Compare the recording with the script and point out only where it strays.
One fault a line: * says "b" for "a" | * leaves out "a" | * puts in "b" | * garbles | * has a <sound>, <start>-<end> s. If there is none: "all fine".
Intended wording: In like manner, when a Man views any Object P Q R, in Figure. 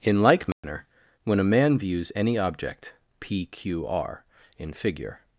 * has a dropout, 0.5-0.6 s